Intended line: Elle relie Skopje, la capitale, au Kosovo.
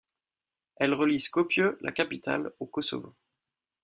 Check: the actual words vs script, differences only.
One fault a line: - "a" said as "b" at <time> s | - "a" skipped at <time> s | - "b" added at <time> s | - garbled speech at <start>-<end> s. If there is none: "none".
none